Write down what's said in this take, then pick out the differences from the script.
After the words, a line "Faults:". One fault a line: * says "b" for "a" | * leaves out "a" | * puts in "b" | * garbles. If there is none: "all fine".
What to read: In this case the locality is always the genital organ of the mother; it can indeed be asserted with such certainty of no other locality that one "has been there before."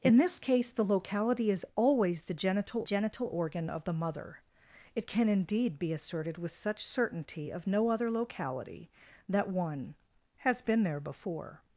In this case the locality is always the genital genital organ of the mother; it can indeed be asserted with such certainty of no other locality that one "has been there before."
Faults:
* puts in "genital"